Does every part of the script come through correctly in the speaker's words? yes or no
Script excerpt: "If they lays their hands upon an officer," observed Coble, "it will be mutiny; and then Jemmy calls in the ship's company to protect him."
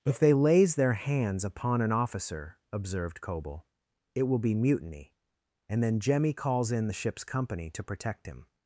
yes